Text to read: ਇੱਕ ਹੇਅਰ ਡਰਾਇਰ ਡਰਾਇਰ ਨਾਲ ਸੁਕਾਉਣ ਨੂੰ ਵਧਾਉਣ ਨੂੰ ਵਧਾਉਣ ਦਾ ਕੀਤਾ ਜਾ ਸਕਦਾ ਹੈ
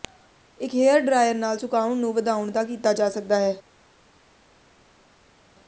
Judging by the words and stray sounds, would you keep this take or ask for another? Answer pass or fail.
fail